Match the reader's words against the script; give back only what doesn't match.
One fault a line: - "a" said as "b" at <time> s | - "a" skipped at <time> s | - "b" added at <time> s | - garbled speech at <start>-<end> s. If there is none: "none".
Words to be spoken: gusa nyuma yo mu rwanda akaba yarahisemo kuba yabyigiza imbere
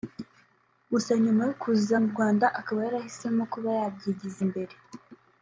- "kuza" added at 1.6 s